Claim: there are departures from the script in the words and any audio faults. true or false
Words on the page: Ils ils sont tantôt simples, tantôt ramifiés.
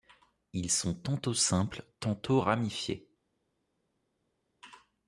true